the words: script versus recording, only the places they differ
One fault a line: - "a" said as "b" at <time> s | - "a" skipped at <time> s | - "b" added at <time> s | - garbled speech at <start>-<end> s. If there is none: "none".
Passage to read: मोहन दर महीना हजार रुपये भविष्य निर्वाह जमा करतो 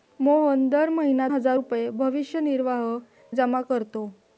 none